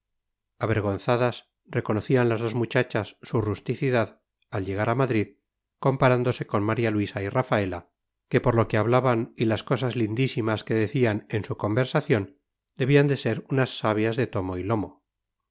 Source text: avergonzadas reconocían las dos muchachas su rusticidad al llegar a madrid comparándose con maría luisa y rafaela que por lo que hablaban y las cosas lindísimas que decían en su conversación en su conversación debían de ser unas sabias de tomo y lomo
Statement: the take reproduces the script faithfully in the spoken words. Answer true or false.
false